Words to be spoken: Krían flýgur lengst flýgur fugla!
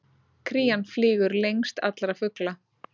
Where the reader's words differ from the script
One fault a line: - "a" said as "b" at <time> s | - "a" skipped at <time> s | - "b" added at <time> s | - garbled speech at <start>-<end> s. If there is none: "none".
- "flýgur" said as "allra" at 1.9 s